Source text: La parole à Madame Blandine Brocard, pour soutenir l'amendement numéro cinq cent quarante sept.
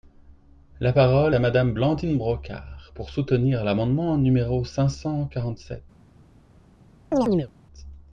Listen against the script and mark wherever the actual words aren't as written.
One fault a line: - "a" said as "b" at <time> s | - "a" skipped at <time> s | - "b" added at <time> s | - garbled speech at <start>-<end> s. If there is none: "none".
none